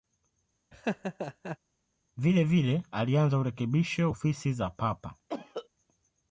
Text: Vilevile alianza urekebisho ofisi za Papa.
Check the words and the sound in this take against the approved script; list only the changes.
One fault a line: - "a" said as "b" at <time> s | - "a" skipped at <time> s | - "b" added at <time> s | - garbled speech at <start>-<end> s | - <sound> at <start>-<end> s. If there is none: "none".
- laugh at 0.7-1.6 s
- cough at 5.3-5.7 s